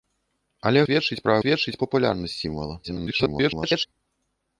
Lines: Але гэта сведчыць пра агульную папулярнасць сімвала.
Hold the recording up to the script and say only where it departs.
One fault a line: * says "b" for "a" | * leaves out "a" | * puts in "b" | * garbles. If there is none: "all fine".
* leaves out "гэта"
* says "сведчыць" for "агульную"
* garbles